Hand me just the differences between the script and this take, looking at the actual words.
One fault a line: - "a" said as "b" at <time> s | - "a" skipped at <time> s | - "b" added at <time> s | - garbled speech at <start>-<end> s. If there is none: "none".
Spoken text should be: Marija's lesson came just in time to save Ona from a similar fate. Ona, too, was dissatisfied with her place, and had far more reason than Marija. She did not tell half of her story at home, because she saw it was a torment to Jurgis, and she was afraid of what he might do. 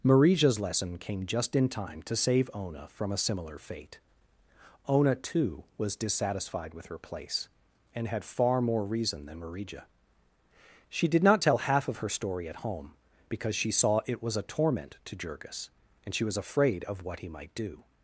none